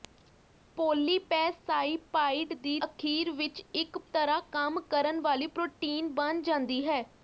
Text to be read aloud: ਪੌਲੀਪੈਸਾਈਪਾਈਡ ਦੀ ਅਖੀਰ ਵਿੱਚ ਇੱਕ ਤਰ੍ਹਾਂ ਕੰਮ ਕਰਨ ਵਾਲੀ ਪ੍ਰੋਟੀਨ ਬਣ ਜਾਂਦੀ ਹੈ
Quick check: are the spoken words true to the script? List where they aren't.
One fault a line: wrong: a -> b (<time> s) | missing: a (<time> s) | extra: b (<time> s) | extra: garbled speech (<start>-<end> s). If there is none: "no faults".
no faults